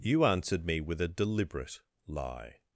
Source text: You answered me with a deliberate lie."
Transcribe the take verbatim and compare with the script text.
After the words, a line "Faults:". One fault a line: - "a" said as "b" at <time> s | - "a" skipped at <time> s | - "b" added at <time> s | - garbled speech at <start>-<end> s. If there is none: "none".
You answered me with a deliberate lie."
Faults:
none